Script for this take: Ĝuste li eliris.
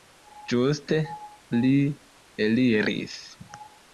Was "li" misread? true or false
false